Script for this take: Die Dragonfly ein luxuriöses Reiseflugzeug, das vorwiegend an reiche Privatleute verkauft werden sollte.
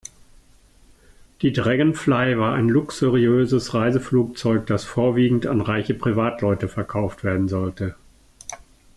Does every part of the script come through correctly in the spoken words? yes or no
no